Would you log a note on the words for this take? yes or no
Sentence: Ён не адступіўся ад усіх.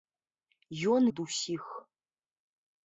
yes